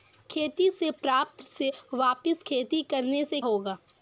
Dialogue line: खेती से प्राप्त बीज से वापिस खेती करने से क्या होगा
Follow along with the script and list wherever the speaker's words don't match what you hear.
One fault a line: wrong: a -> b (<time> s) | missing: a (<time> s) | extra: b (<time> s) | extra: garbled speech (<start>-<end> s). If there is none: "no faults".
missing: बीज (1.4 s)
missing: क्या (3.4 s)